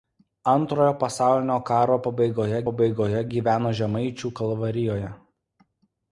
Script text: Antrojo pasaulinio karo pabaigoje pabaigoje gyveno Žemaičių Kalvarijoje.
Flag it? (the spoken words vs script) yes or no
no